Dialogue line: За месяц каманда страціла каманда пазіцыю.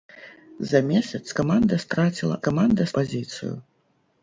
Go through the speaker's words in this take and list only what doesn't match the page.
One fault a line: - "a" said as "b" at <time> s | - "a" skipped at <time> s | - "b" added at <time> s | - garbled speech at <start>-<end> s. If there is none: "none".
none